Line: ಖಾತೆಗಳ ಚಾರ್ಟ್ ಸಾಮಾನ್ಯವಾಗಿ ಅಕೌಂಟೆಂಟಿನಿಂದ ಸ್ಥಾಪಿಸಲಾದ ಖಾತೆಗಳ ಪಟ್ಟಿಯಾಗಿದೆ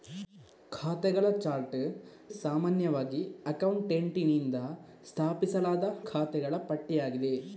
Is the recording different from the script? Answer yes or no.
no